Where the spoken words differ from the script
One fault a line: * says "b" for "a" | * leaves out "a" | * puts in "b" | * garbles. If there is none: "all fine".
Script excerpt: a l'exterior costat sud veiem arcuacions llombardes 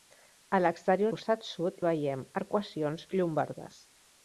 all fine